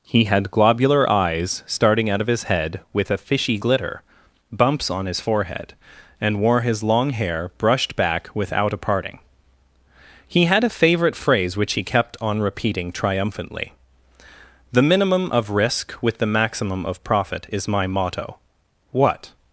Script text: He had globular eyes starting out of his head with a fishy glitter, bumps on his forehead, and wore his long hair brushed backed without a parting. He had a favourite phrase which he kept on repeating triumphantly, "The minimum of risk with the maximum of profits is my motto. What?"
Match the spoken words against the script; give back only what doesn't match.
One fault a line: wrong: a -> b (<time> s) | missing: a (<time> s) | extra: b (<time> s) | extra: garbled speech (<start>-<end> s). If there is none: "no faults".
wrong: backed -> back (7.9 s)
wrong: profits -> profit (17.0 s)